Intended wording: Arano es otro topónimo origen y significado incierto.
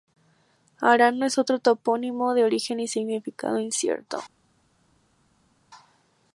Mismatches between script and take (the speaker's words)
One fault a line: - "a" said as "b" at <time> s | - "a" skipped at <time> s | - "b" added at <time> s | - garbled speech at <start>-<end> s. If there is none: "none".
- "de" added at 2.3 s